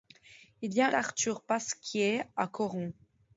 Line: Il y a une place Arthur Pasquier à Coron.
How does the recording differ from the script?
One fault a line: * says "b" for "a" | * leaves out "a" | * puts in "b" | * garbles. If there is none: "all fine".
* leaves out "une place"